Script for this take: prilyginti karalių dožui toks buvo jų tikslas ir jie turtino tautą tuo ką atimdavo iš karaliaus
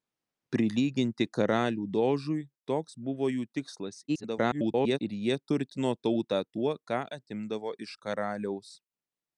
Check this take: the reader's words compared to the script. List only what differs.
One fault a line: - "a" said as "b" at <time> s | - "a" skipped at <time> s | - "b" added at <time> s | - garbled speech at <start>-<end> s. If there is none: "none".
- garbled speech at 4.1-5.0 s